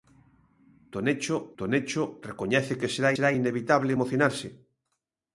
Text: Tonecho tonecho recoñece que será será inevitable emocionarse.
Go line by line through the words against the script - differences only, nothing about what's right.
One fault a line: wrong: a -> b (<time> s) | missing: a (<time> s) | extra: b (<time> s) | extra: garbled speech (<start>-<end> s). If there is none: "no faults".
no faults